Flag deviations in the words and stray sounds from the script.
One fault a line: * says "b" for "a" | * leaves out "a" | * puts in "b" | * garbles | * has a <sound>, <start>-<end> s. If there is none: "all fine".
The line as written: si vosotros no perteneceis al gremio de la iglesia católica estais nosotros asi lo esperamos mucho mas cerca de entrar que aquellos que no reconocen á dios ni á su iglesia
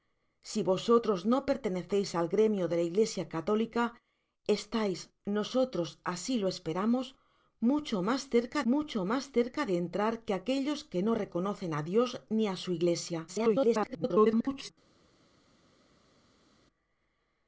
* puts in "mucho mas cerca"
* garbles